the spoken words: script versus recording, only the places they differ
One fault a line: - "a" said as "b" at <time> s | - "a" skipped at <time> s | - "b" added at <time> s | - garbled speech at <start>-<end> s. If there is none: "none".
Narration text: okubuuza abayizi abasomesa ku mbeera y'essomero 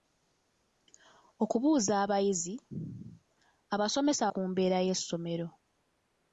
none